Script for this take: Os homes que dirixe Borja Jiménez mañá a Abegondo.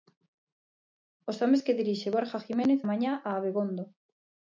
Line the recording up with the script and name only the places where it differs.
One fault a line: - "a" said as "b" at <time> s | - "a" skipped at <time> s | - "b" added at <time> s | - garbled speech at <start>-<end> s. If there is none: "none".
none